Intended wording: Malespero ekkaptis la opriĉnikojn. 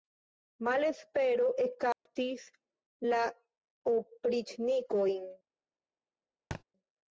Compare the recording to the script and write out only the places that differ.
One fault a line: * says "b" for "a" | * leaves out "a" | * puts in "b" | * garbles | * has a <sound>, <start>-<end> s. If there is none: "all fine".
* has a dropout, 1.9-2.1 s
* has a thud, 6.5-6.6 s